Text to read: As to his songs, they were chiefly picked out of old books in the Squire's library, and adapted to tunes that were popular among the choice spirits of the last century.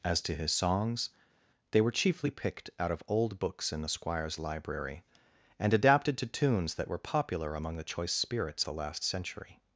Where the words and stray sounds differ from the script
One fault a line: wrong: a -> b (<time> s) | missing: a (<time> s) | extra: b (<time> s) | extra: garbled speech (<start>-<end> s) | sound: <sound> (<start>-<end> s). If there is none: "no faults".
missing: of (8.6 s)